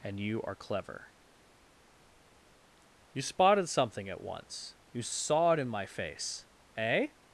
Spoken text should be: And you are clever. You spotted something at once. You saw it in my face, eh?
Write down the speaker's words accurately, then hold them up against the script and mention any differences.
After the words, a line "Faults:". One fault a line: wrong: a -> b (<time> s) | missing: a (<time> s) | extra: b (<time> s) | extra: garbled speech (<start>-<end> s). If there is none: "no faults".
And you are clever. You spotted something at once. You saw it in my face, eh?
Faults:
no faults